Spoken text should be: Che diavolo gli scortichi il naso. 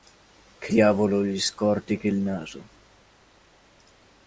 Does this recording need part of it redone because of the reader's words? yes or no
no